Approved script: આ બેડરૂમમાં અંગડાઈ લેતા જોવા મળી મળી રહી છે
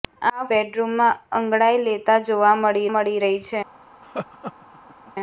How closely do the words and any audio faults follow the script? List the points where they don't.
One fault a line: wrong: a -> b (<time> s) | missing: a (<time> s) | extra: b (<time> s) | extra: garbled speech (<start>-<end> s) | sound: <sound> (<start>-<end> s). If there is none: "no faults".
sound: laugh (4.0-5.1 s)